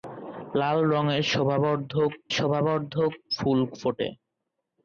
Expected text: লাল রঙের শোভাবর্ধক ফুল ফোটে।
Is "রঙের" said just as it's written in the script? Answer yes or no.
yes